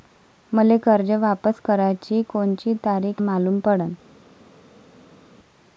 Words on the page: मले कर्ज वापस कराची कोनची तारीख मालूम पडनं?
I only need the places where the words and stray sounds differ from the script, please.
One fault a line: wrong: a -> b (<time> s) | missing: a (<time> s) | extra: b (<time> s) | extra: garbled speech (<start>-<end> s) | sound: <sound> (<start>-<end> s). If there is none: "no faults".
no faults